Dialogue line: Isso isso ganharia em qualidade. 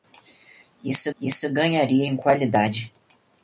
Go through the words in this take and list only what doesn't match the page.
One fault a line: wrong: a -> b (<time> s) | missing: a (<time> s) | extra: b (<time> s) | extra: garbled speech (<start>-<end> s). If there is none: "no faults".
no faults